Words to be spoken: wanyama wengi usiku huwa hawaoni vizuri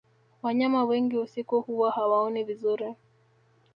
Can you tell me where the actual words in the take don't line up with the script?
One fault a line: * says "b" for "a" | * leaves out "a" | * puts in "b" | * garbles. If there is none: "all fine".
all fine